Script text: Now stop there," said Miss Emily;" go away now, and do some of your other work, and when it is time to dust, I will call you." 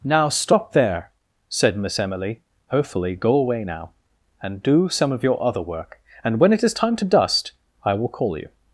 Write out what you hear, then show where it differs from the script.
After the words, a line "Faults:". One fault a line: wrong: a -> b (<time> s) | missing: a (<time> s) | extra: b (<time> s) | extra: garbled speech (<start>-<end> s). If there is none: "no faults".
Now stop there," said Miss Emily;" hopefully go away now, and do some of your other work, and when it is time to dust, I will call you."
Faults:
extra: hopefully (2.7 s)